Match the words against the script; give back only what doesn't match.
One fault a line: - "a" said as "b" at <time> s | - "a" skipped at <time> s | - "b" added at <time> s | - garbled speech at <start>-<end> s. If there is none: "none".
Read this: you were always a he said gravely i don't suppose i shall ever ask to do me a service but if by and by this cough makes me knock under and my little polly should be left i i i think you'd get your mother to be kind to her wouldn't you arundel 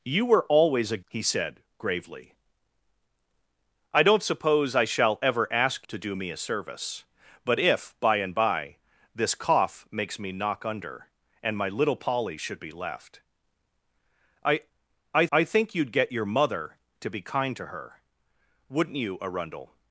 none